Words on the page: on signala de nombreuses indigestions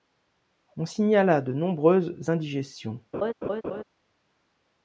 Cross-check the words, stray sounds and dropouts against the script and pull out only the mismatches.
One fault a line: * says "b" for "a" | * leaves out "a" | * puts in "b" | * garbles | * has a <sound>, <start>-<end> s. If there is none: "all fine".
* has a laugh, 3.1-3.8 s